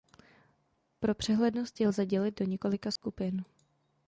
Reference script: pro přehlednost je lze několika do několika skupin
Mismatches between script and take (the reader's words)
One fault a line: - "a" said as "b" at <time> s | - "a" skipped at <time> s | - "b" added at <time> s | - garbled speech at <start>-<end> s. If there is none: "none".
- "několika" said as "dělit" at 2.1 s